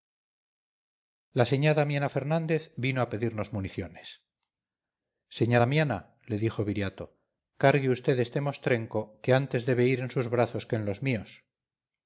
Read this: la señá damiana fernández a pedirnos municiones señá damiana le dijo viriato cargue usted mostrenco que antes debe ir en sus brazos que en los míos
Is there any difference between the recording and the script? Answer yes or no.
yes